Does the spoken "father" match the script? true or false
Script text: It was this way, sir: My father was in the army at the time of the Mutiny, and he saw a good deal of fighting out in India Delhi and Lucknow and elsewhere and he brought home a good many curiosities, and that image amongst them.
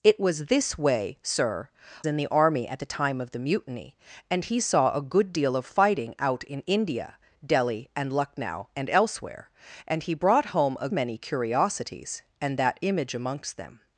false